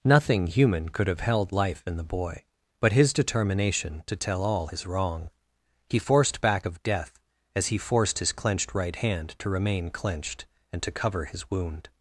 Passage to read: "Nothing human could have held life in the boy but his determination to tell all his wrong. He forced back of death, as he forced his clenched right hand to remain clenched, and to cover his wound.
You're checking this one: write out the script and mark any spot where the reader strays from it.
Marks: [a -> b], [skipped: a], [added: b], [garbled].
"Nothing human could have held life in the boy but his determination to tell all his wrong. He forced back of death, as he forced his clenched right hand to remain clenched, and to cover his wound.